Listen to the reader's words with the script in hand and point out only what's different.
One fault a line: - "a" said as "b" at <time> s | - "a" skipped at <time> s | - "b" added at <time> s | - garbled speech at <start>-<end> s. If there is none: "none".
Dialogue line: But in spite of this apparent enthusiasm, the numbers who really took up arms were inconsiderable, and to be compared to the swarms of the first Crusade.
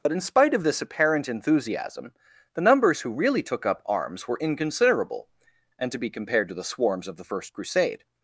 none